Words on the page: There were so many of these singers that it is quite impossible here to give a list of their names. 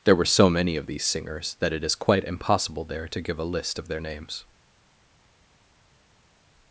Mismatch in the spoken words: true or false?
true